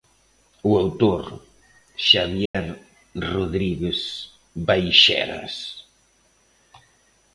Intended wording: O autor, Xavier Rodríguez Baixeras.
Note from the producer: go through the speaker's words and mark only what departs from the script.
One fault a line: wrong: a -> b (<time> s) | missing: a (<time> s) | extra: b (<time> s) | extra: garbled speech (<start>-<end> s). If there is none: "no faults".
no faults